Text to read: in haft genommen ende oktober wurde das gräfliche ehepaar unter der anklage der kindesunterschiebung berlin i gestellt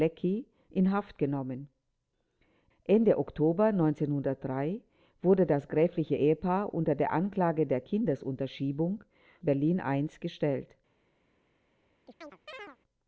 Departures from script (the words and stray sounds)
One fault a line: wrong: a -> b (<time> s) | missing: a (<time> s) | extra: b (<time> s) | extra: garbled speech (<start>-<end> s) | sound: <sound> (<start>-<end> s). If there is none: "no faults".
sound: chirp (12.1-12.8 s)